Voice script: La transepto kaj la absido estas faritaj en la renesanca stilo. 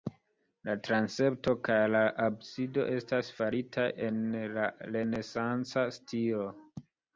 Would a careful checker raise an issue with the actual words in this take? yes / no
no